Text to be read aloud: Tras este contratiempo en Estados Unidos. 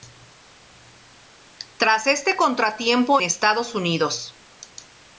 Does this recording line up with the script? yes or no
no